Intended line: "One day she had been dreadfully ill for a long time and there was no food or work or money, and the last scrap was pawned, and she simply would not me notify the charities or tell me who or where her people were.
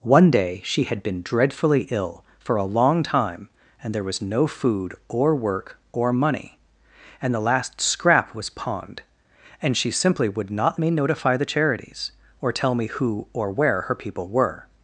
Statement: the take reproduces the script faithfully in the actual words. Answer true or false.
true